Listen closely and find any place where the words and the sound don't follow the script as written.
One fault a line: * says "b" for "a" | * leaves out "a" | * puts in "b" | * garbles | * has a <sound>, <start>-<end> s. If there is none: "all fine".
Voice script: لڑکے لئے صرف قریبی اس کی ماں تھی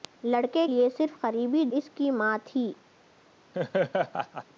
* has a laugh, 3.5-4.4 s